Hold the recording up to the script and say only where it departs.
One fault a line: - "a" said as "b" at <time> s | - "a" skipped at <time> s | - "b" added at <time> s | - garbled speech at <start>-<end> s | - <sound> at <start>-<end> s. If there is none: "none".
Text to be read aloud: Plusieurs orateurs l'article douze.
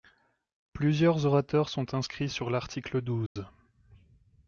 - "sont inscrits sur" added at 1.7 s
- dropout at 3.3-3.4 s